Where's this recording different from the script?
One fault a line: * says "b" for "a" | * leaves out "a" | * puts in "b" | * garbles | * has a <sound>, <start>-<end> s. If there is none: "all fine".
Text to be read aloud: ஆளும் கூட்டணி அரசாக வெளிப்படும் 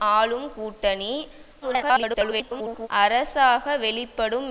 * garbles